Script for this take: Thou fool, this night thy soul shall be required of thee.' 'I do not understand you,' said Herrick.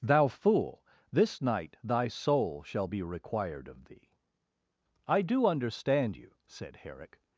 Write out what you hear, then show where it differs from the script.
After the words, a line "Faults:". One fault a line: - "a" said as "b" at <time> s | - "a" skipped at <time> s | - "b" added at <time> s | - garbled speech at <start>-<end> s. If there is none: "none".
Thou fool, this night thy soul shall be required of thee.' 'I do understand you,' said Herrick.
Faults:
- "not" skipped at 5.5 s